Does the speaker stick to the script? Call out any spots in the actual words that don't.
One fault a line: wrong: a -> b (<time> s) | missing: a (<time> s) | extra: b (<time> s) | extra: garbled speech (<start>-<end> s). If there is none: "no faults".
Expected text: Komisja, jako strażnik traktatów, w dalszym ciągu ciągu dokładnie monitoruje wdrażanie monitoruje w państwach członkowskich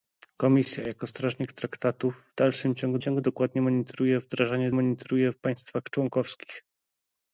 no faults